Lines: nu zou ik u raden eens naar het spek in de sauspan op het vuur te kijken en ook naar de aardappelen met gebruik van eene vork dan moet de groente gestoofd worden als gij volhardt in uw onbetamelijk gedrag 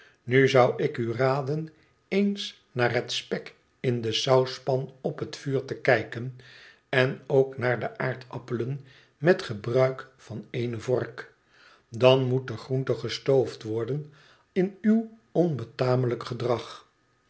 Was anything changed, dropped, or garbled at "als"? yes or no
yes